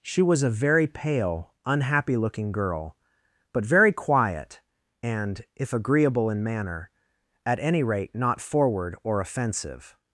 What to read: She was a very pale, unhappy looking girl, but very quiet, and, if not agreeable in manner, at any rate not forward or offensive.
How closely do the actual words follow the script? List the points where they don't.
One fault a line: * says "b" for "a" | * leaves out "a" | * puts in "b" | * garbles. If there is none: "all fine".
* leaves out "not"